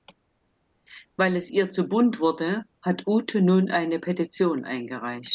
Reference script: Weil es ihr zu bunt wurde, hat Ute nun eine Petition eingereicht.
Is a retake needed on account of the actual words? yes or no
no